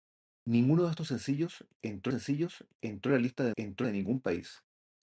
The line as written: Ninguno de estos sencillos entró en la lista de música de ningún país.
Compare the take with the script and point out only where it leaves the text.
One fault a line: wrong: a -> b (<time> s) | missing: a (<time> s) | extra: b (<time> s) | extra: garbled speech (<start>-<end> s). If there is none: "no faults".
extra: sencillos entró (2.1 s)
wrong: música -> entró (3.6 s)